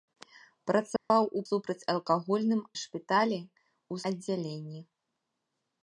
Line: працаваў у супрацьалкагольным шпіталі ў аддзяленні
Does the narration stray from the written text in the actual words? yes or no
no